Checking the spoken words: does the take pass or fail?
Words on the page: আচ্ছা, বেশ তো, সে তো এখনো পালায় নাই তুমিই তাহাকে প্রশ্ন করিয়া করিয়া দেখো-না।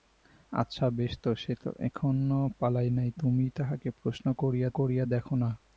pass